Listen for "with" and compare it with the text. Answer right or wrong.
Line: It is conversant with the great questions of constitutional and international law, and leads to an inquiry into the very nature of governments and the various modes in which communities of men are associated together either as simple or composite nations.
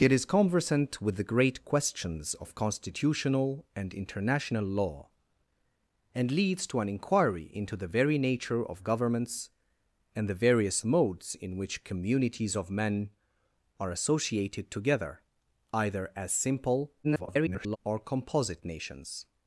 right